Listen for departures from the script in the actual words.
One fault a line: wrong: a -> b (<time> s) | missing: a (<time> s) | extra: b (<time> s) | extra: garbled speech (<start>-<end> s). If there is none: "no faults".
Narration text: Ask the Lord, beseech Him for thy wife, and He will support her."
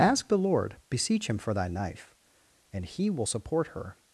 wrong: wife -> knife (1.7 s)